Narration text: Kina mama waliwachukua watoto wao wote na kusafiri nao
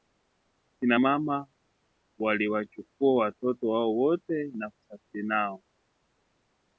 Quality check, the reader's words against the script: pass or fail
pass